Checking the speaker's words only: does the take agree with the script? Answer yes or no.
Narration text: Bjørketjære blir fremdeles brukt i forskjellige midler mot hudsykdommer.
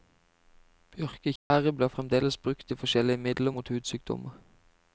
yes